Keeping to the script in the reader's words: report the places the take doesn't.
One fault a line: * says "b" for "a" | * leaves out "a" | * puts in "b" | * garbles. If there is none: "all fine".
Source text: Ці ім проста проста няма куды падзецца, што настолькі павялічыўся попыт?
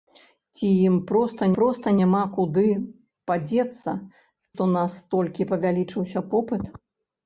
all fine